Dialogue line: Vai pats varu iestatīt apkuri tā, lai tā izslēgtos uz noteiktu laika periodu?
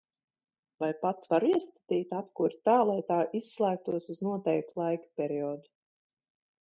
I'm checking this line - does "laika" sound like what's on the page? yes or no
yes